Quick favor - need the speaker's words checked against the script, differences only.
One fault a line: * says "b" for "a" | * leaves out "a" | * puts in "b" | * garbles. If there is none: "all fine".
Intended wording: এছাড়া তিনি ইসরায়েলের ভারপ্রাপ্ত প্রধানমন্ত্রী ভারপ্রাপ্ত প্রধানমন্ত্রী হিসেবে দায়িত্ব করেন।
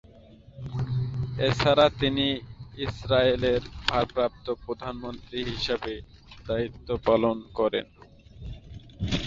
* leaves out "ভারপ্রাপ্ত প্রধানমন্ত্রী"
* puts in "পালন"